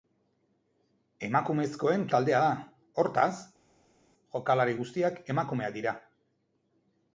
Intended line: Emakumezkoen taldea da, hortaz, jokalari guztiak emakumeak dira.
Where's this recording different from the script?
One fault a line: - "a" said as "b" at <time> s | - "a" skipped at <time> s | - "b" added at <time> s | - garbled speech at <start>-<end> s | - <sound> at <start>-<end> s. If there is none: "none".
none